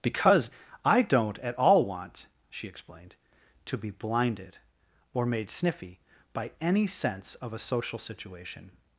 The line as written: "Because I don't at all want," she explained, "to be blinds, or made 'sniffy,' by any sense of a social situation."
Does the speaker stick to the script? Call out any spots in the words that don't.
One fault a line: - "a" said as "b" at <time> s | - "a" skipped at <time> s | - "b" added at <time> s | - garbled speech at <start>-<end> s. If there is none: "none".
- "blinds" said as "blinded" at 3.9 s